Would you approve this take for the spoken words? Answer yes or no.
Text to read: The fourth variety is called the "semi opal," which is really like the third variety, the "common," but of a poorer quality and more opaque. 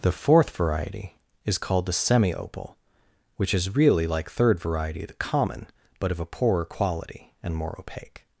no